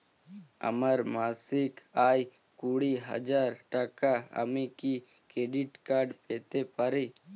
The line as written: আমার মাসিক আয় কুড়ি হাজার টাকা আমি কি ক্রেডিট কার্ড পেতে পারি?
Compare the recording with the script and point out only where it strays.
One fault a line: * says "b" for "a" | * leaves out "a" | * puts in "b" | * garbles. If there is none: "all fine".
all fine